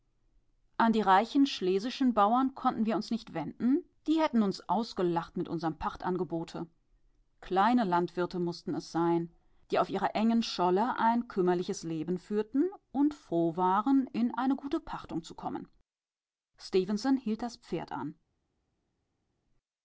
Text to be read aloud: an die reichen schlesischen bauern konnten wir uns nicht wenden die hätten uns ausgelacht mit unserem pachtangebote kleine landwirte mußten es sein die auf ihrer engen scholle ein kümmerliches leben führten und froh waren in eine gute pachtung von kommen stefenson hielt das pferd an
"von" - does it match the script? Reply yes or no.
no